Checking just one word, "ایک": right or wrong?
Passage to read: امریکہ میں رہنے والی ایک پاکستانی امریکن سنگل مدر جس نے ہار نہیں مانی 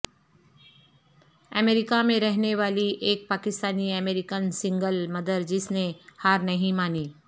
right